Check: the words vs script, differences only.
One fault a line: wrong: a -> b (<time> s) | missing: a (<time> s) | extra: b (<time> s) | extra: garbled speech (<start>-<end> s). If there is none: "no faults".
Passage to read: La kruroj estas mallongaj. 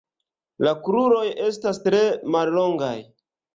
extra: tre (1.9 s)